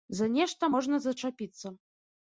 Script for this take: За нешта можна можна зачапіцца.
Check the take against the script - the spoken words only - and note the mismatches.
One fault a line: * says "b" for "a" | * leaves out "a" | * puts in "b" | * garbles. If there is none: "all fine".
* leaves out "можна"